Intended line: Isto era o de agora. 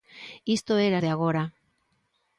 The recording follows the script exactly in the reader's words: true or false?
true